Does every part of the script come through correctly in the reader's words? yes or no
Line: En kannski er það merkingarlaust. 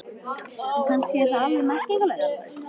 no